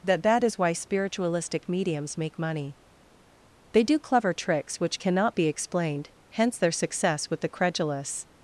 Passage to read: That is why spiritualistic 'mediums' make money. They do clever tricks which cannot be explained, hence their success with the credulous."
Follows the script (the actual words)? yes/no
no